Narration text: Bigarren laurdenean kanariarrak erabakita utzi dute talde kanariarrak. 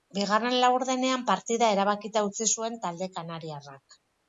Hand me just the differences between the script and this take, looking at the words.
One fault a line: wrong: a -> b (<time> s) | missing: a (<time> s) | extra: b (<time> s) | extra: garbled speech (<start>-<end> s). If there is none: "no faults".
wrong: kanariarrak -> partida (1.3 s)
wrong: dute -> zuen (2.6 s)